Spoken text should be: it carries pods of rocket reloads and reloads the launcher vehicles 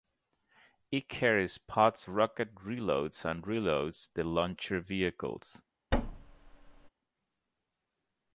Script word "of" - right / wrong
wrong